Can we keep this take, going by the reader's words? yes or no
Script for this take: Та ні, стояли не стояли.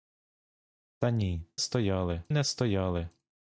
yes